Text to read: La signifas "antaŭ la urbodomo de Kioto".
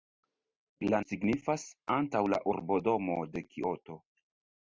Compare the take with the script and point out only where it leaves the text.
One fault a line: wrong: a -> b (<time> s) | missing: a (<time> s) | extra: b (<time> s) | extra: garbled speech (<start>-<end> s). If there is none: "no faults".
no faults